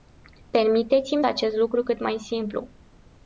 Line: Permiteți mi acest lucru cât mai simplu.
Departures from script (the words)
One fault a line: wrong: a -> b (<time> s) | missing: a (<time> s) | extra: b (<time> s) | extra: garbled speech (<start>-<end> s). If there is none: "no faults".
no faults